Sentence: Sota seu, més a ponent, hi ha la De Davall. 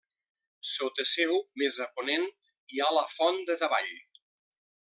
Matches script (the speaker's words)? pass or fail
fail